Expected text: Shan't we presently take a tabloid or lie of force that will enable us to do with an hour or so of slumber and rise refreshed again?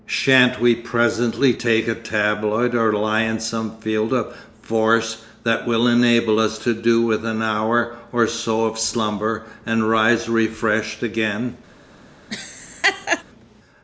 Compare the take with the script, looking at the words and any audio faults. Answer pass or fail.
fail